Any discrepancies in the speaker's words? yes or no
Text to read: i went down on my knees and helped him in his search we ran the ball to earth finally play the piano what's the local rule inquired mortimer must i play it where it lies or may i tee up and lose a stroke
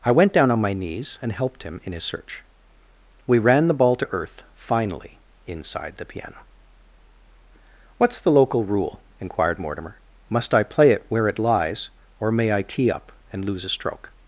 yes